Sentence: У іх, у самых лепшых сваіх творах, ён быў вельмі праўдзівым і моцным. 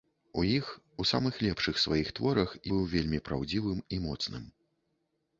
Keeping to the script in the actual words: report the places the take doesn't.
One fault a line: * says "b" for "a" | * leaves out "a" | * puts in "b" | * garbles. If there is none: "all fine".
* leaves out "ён"